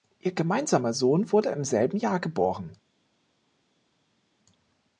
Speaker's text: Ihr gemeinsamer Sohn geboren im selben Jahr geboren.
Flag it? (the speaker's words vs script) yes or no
yes